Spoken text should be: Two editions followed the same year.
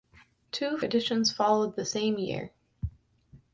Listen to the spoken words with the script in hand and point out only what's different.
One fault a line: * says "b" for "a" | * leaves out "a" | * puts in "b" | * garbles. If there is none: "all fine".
all fine